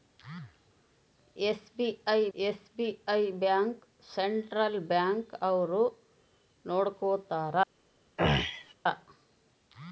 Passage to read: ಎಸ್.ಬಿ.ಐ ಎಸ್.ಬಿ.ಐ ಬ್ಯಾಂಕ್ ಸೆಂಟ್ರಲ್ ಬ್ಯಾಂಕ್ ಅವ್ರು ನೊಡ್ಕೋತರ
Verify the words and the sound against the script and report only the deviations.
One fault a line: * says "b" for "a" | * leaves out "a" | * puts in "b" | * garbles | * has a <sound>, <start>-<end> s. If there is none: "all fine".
* has a throat clearing, 8.2-8.7 s